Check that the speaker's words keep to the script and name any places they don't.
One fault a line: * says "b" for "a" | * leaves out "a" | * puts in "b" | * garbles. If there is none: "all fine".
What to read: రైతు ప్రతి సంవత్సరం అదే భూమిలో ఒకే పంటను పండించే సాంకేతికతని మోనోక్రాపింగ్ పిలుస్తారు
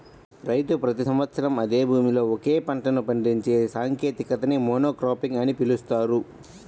* puts in "అని"